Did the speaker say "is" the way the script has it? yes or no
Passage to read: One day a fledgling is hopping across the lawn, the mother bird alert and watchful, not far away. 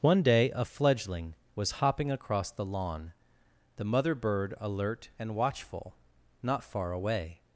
no